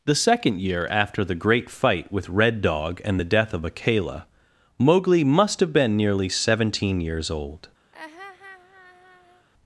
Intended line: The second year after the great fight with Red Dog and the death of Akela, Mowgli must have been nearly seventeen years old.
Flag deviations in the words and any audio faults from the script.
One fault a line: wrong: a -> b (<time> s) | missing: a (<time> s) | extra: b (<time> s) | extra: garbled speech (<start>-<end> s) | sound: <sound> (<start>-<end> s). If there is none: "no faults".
sound: laugh (7.9-9.5 s)